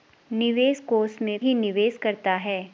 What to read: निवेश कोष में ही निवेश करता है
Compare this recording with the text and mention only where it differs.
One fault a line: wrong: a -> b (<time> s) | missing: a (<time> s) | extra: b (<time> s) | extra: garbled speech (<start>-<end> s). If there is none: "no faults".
no faults